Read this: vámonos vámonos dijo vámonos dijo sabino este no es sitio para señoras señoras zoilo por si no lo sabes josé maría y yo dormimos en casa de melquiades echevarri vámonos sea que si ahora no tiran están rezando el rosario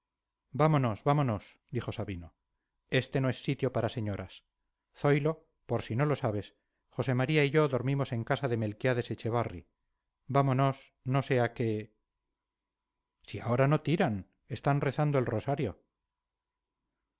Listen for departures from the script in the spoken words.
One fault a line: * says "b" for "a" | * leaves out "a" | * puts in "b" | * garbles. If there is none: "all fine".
* leaves out "vámonos dijo"
* leaves out "señoras"
* puts in "no"